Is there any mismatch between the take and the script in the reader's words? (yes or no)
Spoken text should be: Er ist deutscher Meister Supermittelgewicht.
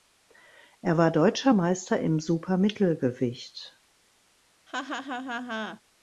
yes